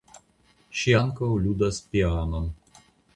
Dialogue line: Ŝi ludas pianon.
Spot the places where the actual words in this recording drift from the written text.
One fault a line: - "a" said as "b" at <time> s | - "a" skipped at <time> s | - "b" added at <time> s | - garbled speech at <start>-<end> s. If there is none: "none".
- "ankaŭ" added at 0.9 s